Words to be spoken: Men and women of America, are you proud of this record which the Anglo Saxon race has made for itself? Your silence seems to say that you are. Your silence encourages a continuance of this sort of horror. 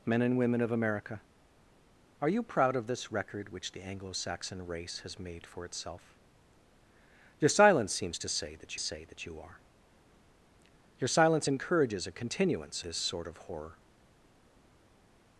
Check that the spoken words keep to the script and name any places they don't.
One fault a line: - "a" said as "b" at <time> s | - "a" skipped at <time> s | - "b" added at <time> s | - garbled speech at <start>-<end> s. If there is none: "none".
- "say that" added at 8.8 s
- "of" skipped at 12.8 s